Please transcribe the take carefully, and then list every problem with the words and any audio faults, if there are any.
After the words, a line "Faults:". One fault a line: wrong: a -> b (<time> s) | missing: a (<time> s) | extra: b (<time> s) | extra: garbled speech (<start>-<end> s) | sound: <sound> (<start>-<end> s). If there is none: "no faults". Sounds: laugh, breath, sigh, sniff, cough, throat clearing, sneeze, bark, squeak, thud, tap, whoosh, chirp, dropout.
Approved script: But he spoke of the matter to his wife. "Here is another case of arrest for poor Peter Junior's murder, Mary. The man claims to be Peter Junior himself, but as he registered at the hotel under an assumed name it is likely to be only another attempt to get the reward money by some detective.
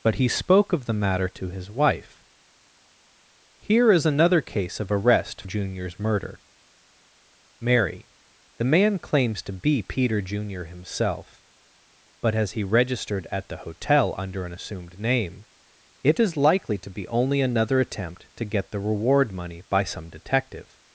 But he spoke of the matter to his wife. "Here is another case of arrest Junior's murder, Mary. The man claims to be Peter Junior himself, but as he registered at the hotel under an assumed name it is likely to be only another attempt to get the reward money by some detective.
Faults:
missing: for poor Peter (5.4 s)